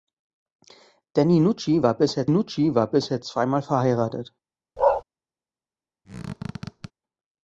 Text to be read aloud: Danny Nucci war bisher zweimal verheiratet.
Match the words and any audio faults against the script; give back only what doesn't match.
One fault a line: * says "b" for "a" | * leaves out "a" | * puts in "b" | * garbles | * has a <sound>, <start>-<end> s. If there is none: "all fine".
* puts in "Nucci war bisher"
* has a bark, 4.8-5.0 s
* has a squeak, 6.0-6.9 s